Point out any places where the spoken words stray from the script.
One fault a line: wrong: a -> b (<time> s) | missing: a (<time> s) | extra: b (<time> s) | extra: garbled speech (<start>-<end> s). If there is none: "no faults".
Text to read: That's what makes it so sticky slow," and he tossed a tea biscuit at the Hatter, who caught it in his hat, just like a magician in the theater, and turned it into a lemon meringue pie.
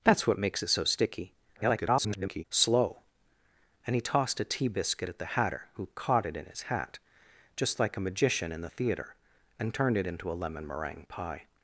extra: garbled speech (1.6-2.4 s)